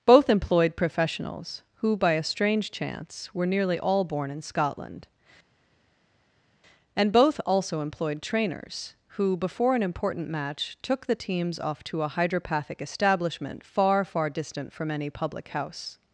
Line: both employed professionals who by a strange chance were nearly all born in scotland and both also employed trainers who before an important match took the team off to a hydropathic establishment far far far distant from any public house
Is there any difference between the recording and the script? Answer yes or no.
yes